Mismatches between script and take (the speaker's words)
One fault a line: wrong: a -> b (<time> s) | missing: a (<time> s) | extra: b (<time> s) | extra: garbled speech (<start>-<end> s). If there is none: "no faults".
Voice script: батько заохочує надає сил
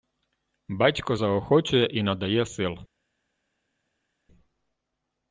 extra: і (1.9 s)